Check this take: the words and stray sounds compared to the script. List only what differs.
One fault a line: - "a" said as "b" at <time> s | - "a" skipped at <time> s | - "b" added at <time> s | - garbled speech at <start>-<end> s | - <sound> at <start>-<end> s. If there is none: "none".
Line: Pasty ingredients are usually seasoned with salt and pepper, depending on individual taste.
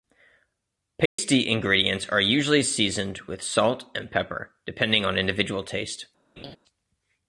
- dropout at 1.1-1.2 s
- laugh at 6.4-6.6 s